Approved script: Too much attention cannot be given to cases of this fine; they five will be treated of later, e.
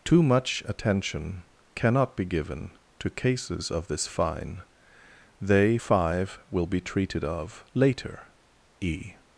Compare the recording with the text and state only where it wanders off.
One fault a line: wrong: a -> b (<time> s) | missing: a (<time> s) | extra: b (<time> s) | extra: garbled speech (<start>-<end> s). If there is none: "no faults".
no faults